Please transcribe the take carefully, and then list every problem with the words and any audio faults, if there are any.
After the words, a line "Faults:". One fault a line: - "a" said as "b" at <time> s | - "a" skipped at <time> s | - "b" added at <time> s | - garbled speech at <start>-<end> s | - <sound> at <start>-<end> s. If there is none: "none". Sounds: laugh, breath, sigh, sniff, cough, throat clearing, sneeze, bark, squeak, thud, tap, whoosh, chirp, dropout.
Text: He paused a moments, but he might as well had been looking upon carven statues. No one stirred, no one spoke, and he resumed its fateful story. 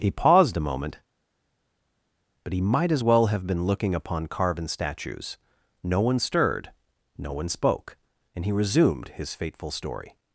He paused a moment, but he might as well have been looking upon carven statues. No one stirred, no one spoke, and he resumed his fateful story.
Faults:
- "moments" said as "moment" at 0.7 s
- "had" said as "have" at 3.3 s
- "its" said as "his" at 9.1 s